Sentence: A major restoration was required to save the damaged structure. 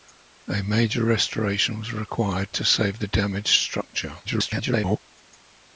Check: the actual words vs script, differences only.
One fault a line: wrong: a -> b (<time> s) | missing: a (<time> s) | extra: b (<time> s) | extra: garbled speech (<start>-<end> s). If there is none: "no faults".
extra: garbled speech (4.2-5.0 s)